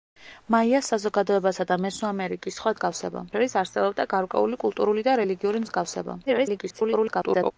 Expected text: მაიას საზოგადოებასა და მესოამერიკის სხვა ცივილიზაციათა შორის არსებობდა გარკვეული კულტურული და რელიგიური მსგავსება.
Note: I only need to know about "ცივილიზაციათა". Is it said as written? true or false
false